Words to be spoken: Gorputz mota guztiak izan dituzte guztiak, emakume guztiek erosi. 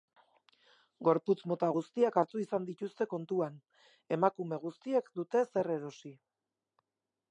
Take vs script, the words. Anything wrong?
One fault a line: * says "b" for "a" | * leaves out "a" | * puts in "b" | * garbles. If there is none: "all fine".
* puts in "hartu"
* says "kontuan" for "guztiak"
* puts in "dute zer"